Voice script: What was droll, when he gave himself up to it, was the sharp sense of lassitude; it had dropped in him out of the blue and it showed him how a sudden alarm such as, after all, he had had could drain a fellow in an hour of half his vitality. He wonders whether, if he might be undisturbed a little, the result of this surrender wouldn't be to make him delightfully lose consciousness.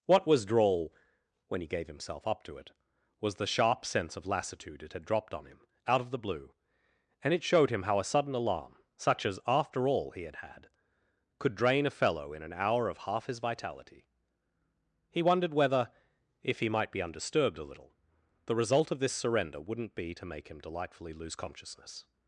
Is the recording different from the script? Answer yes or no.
yes